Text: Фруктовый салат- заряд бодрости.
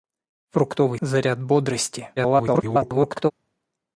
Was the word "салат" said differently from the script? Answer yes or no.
yes